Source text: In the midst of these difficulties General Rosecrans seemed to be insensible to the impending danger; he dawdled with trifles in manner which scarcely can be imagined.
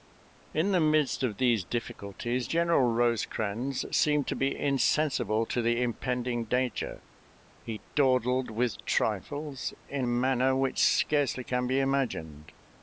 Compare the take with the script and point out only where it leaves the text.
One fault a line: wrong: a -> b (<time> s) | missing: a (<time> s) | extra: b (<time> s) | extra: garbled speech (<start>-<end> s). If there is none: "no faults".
no faults